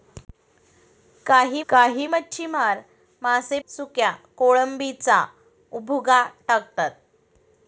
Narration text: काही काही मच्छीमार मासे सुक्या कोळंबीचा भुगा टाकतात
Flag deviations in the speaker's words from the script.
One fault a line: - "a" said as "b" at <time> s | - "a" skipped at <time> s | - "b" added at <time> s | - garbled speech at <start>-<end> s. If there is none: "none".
none